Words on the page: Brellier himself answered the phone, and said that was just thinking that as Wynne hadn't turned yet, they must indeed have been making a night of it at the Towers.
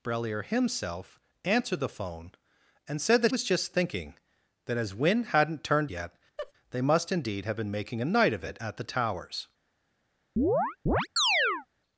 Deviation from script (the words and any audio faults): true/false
true